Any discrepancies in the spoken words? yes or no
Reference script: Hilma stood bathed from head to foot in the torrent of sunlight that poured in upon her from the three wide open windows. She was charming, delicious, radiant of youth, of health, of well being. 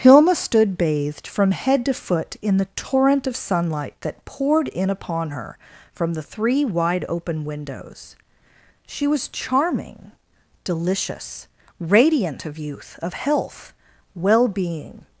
yes